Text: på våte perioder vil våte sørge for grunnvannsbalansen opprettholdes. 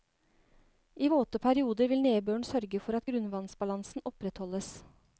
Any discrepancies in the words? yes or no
yes